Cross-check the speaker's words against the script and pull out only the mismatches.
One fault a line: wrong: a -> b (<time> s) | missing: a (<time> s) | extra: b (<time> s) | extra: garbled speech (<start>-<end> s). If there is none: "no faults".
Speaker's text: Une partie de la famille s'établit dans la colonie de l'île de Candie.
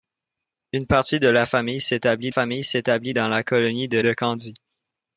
extra: famille s'établit (2.3 s)
missing: l'île (4.0 s)